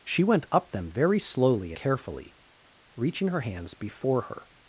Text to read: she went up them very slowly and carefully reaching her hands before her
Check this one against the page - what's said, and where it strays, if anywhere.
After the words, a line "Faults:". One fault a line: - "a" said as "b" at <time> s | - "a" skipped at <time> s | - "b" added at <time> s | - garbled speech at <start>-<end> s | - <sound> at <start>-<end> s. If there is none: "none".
she went up them very slowly carefully reaching her hands before her
Faults:
- "and" skipped at 1.7 s